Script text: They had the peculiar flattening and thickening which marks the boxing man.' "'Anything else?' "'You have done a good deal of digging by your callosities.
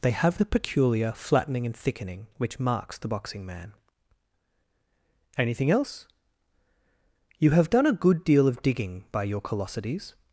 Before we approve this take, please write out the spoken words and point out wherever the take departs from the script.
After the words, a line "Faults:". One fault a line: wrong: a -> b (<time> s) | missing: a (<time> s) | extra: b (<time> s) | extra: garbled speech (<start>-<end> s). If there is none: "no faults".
They have the peculiar flattening and thickening which marks the boxing man.' "'Anything else?' "'You have done a good deal of digging by your callosities.
Faults:
wrong: had -> have (0.1 s)